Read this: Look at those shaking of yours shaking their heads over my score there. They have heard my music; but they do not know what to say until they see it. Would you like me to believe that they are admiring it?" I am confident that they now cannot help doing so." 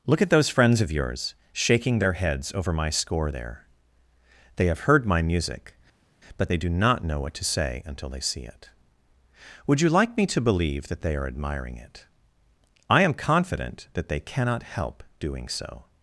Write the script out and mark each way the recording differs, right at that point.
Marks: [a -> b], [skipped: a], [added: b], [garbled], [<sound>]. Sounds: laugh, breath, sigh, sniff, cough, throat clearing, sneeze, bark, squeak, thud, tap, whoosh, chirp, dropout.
Look at those [shaking -> friends] of yours shaking their heads over my score there. They have heard my music; but they do not know what to say until they see it. Would you like me to believe that they are admiring it?" I am confident that they [skipped: now] cannot help doing so."